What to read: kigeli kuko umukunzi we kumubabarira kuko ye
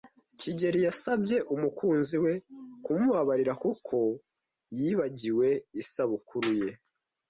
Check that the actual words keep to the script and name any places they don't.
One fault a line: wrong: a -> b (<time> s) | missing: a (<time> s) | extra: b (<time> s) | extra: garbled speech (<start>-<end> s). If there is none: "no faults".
wrong: kuko -> yasabye (0.9 s)
extra: yibagiwe isabukuru (4.8 s)